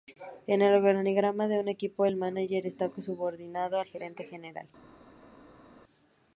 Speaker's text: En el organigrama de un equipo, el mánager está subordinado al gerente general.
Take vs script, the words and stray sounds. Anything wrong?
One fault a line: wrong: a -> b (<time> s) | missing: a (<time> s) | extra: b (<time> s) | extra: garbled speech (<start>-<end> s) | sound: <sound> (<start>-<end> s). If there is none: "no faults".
no faults